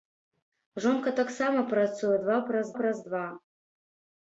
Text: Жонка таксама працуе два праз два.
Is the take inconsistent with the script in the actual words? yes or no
yes